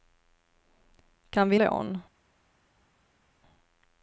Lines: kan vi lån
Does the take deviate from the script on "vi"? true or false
false